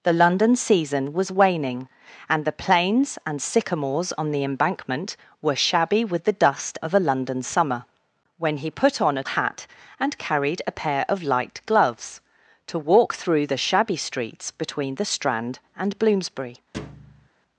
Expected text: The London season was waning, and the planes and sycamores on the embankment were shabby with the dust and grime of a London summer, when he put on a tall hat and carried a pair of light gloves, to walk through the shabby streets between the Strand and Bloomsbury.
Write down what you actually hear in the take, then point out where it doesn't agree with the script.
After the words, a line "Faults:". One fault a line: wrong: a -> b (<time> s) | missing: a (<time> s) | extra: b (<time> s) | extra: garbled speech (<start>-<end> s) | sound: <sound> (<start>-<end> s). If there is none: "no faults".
The London season was waning, and the planes and sycamores on the embankment were shabby with the dust of a London summer, when he put on a hat and carried a pair of light gloves, to walk through the shabby streets between the Strand and Bloomsbury.
Faults:
missing: and grime (6.8 s)
missing: tall (9.2 s)
sound: thud (16.7-17.3 s)